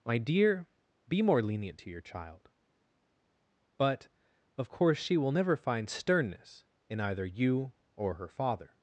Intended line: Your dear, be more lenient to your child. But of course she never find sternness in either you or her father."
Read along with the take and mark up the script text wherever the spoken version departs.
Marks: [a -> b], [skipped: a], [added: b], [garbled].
[Your -> My] dear, be more lenient to your child. But of course she [added: will] never find sternness in either you or her father."